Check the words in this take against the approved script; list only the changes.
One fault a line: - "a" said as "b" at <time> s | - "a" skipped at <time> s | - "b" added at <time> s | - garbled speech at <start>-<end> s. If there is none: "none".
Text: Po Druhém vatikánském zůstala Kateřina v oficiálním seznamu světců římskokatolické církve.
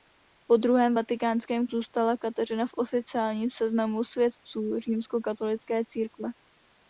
none